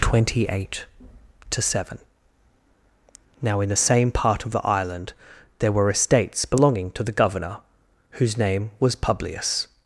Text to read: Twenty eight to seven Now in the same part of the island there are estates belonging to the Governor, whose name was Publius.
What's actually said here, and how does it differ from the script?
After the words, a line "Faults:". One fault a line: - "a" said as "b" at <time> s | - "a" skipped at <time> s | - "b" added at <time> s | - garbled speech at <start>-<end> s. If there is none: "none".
Twenty eight to seven Now in the same part of the island there were estates belonging to the Governor, whose name was Publius.
Faults:
- "are" said as "were" at 5.7 s